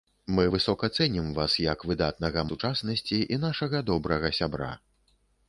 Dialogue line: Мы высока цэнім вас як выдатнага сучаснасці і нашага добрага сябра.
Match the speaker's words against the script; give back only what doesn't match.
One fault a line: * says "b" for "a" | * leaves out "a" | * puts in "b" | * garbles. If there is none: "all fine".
all fine